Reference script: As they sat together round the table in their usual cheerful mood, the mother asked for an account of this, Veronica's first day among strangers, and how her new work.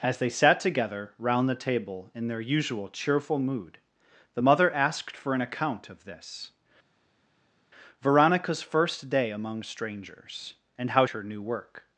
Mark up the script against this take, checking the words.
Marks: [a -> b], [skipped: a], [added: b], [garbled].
As they sat together round the table in their usual cheerful mood, the mother asked for an account of this, Veronica's first day among strangers, and how her new work.